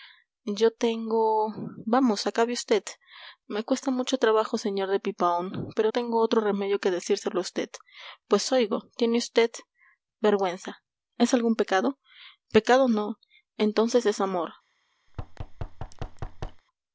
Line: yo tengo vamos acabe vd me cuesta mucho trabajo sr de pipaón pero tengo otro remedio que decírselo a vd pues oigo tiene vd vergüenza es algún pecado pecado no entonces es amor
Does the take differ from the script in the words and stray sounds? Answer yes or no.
yes